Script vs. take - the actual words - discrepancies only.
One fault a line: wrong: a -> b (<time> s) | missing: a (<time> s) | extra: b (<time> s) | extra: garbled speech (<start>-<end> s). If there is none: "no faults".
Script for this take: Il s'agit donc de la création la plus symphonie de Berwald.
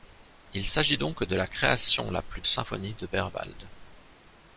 no faults